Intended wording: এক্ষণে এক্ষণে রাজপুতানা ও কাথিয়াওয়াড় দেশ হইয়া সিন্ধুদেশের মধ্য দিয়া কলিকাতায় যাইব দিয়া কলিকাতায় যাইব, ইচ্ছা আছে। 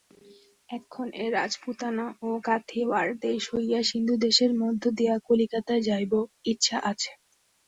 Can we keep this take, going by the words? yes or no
no